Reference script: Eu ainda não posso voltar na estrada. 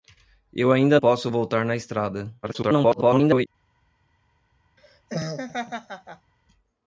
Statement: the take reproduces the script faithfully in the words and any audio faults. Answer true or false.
false